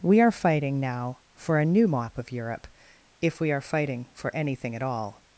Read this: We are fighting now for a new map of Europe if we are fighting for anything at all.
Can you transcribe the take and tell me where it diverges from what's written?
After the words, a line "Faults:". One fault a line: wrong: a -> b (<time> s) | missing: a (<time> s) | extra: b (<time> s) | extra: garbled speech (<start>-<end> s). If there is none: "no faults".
We are fighting now for a new map of Europe if we are fighting for anything at all.
Faults:
no faults